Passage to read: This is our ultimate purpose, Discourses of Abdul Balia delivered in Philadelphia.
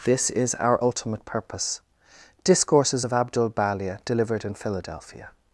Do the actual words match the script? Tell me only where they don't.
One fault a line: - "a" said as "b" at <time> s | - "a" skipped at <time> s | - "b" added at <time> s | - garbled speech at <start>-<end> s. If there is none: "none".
none